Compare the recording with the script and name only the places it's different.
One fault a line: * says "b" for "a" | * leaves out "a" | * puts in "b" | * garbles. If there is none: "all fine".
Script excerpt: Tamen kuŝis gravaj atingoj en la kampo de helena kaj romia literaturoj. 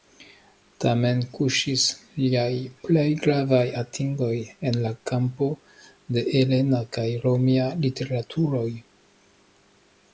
* puts in "liaj plej"